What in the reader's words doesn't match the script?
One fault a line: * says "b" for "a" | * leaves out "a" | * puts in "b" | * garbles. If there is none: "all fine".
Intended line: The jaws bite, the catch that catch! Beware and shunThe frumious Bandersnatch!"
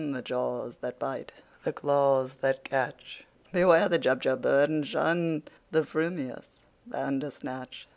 * puts in "that"
* says "claws" for "catch"
* puts in "the Jubjub bird"